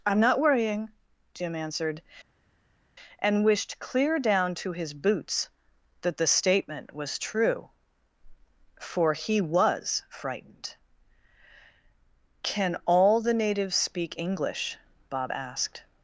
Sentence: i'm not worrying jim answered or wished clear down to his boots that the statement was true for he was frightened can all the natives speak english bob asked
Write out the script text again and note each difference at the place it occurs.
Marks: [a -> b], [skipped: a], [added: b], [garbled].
i'm not worrying jim answered [or -> and] wished clear down to his boots that the statement was true for he was frightened can all the natives speak english bob asked